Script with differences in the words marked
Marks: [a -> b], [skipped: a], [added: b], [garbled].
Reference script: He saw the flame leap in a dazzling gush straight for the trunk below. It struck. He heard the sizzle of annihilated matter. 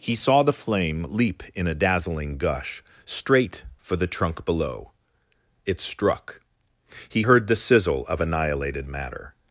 He saw the flame leap in a dazzling gush straight for the trunk below. It struck. He heard the sizzle of annihilated matter.